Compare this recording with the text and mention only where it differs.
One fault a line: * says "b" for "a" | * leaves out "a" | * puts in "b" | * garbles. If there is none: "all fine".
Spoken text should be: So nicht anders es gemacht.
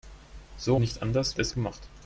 all fine